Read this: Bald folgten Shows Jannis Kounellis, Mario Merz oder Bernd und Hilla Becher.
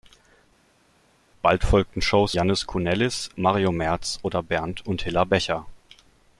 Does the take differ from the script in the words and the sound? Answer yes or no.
no